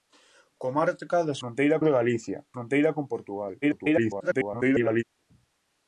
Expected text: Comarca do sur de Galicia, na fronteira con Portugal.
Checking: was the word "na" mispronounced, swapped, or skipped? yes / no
yes